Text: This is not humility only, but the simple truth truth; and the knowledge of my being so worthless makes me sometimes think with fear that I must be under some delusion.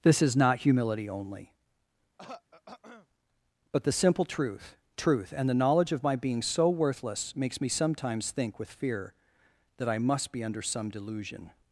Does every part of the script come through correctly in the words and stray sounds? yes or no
no